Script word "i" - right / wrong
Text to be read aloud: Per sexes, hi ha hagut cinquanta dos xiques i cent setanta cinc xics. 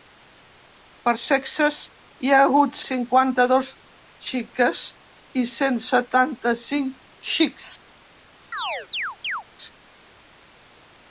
right